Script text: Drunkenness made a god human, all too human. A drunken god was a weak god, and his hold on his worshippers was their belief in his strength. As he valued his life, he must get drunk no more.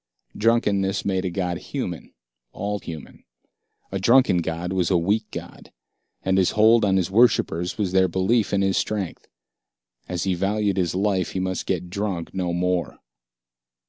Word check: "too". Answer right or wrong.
wrong